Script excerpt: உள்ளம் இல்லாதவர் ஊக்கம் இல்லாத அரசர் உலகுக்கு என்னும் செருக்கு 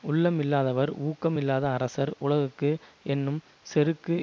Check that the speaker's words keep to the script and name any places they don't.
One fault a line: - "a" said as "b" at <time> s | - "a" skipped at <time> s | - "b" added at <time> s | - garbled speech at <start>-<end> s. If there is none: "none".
none